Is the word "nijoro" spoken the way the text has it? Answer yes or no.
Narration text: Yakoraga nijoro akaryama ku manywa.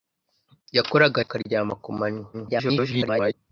no